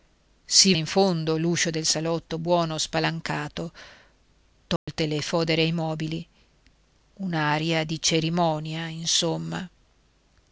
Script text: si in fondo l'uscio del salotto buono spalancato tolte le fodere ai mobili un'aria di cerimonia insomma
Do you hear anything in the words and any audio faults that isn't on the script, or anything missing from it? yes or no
yes